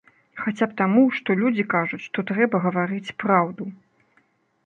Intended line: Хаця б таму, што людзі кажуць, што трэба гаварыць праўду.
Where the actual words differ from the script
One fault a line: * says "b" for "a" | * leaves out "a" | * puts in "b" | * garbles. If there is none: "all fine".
all fine